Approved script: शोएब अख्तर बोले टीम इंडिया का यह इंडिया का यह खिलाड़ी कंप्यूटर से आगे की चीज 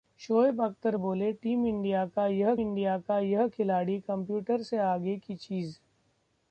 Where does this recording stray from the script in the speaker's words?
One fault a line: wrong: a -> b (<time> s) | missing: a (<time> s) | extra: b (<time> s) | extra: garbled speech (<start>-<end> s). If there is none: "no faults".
no faults